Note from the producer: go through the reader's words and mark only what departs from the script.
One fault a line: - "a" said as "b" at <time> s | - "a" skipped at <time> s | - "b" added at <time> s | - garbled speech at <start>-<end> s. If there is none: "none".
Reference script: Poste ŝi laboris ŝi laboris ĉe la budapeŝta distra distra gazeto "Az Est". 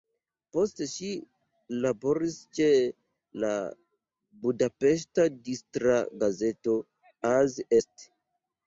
- "ŝi laboris" skipped at 2.4 s
- "distra" skipped at 6.0 s